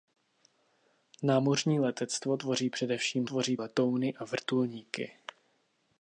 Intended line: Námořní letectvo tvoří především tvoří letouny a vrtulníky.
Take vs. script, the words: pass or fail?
pass